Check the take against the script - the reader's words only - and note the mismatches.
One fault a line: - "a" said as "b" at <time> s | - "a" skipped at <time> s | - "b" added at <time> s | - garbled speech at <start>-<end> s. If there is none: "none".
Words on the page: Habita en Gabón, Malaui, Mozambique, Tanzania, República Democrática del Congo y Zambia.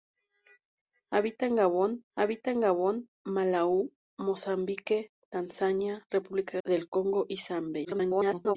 - "habita en Gabón" added at 2.2 s
- "Democrática" skipped at 6.6 s
- garbled speech at 7.8-8.6 s